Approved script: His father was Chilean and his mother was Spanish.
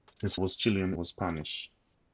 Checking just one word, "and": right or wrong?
wrong